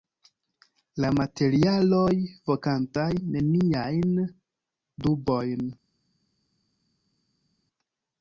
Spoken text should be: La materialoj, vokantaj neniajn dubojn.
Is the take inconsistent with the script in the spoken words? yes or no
no